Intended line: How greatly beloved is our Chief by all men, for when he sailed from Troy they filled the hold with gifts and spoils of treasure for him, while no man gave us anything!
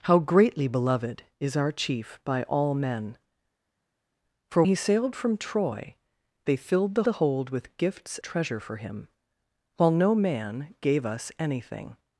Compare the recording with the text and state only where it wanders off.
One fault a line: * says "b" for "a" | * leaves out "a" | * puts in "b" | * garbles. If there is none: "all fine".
* leaves out "when"
* puts in "the"
* leaves out "and spoils of"